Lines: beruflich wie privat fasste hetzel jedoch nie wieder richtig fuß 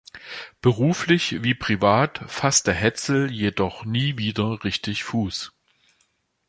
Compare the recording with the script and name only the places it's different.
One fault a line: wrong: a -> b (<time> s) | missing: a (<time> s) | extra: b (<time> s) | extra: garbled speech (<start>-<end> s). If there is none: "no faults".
no faults